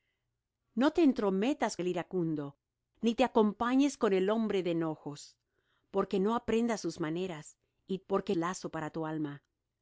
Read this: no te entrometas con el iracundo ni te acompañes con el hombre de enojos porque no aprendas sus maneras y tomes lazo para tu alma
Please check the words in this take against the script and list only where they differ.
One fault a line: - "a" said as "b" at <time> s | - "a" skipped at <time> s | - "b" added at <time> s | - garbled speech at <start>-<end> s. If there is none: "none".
- "con" skipped at 1.8 s
- "tomes" said as "porque" at 8.1 s